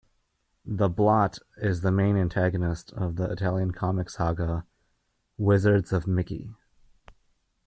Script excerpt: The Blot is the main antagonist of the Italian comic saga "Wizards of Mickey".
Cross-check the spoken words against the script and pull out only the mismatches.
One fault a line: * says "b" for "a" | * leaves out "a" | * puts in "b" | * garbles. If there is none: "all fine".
all fine